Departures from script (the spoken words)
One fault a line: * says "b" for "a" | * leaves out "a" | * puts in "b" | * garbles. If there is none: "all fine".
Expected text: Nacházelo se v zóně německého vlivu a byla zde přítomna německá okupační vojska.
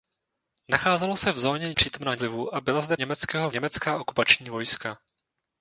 * says "přítomna" for "německého"
* says "německého" for "přítomna"